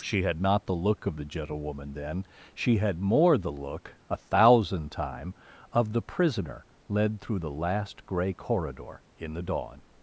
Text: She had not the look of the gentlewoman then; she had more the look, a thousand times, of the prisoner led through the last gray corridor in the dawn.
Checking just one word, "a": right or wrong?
right